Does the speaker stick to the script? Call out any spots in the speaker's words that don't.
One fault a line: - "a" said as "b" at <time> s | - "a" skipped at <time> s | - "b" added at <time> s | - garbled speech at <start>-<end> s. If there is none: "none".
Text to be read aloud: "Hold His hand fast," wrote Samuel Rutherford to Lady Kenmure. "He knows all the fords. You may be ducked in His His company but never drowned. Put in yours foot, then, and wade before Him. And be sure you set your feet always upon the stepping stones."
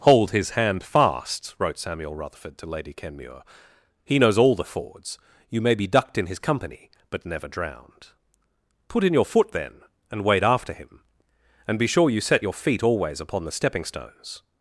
- "His" skipped at 6.4 s
- "yours" said as "your" at 9.1 s
- "before" said as "after" at 10.4 s